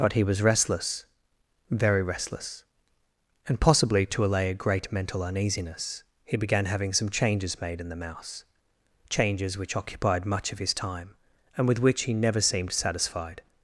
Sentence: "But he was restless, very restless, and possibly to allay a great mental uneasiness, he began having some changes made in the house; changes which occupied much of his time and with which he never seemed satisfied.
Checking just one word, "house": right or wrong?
wrong